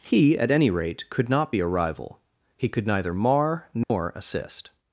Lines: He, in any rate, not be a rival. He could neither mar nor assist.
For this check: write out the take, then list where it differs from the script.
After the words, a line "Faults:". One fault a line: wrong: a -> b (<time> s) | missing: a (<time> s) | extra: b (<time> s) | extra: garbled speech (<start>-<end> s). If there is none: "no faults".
He, at any rate, could not be a rival. He could neither mar nor assist.
Faults:
wrong: in -> at (0.4 s)
extra: could (1.1 s)